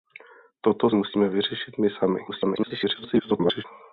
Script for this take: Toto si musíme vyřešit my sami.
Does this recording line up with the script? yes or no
no